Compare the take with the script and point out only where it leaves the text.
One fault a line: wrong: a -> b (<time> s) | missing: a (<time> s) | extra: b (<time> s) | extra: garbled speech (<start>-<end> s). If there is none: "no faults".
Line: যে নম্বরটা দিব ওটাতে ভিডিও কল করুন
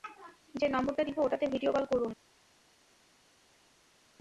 no faults